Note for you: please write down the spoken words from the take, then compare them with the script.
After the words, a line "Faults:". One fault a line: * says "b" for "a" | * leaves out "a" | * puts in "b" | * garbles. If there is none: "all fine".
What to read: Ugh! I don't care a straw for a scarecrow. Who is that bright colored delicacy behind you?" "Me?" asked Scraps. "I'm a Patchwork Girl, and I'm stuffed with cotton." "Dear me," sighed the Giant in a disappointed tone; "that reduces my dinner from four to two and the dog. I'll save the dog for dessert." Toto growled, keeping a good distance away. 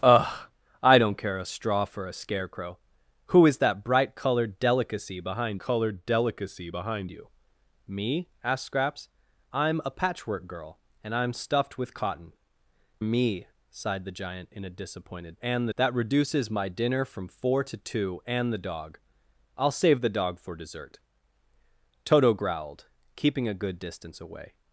Ugh! I don't care a straw for a scarecrow. Who is that bright colored delicacy behind colored delicacy behind you?" "Me?" asked Scraps. "I'm a Patchwork Girl, and I'm stuffed with cotton." "Me," sighed the Giant in a disappointed and; "that reduces my dinner from four to two and the dog. I'll save the dog for dessert." Toto growled, keeping a good distance away.
Faults:
* puts in "colored delicacy behind"
* leaves out "Dear"
* says "and" for "tone"